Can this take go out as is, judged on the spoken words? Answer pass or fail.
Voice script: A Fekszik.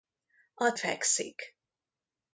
pass